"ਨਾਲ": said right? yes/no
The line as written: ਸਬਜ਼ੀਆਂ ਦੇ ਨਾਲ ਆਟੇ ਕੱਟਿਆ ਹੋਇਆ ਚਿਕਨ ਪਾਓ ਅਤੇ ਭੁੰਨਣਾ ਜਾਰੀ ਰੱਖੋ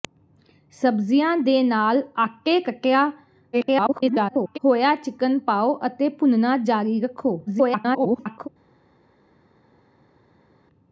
yes